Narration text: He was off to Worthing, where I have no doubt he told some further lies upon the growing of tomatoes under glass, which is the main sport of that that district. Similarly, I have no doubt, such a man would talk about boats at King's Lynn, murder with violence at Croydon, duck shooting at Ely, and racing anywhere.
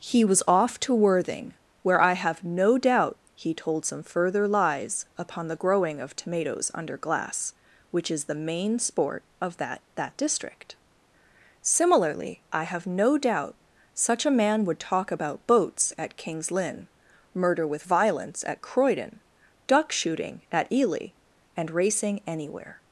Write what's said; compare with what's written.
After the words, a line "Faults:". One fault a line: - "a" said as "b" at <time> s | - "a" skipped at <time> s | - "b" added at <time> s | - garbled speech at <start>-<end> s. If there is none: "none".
He was off to Worthing, where I have no doubt he told some further lies upon the growing of tomatoes under glass, which is the main sport of that that district. Similarly, I have no doubt, such a man would talk about boats at King's Lynn, murder with violence at Croydon, duck shooting at Ely, and racing anywhere.
Faults:
none